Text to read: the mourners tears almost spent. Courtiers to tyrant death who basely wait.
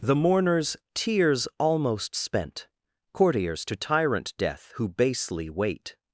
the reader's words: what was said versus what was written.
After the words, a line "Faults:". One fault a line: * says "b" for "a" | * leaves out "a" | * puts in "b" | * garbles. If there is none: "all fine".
the mourners tears almost spent. Courtiers to tyrant death who basely wait.
Faults:
all fine